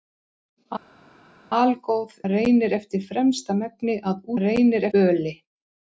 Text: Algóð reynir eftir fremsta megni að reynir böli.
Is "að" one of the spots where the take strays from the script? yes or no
no